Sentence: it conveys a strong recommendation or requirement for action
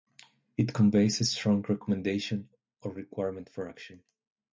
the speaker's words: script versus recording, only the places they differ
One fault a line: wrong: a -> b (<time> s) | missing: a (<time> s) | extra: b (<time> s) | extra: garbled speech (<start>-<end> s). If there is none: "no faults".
no faults